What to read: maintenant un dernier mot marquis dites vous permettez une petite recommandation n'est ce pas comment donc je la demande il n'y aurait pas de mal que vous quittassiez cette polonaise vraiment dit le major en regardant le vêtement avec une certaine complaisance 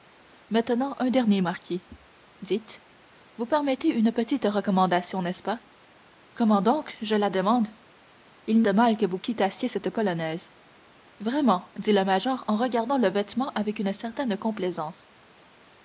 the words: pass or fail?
fail